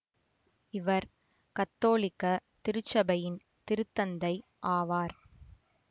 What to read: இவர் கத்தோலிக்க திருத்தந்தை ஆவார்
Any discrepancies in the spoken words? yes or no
yes